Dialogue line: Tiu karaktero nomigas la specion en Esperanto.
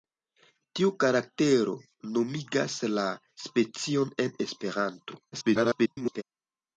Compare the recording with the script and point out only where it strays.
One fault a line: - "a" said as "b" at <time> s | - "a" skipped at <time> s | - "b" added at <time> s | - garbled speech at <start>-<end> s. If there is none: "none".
- garbled speech at 5.3-6.2 s